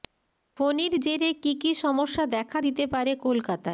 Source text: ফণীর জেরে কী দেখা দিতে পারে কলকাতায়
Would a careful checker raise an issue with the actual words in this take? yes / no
yes